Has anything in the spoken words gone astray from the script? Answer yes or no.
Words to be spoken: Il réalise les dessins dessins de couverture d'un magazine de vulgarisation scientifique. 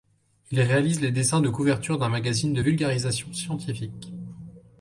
yes